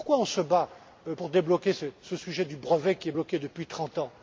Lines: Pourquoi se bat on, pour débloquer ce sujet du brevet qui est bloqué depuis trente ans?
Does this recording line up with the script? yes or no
yes